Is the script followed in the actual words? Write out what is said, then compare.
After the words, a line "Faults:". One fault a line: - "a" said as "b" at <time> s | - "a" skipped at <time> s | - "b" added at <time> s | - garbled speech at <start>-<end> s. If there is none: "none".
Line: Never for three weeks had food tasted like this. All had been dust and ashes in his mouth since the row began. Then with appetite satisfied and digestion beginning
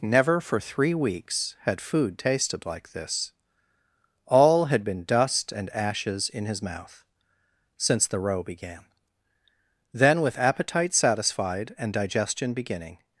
Never for three weeks had food tasted like this. All had been dust and ashes in his mouth since the row began. Then with appetite satisfied and digestion beginning
Faults:
none